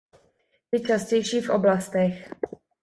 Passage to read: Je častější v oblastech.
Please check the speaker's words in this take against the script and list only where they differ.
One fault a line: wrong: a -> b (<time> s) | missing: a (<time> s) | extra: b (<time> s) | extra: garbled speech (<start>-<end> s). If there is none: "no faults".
no faults